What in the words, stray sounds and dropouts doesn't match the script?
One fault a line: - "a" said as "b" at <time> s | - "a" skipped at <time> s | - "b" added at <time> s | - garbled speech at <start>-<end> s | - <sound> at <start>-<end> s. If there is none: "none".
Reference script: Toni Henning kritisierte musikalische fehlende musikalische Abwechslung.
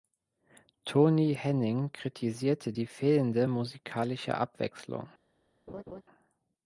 - "musikalische" said as "die" at 2.7 s
- laugh at 5.7-6.0 s